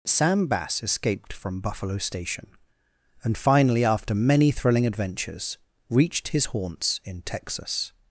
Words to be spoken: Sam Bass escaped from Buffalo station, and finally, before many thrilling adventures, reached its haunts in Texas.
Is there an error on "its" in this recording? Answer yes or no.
yes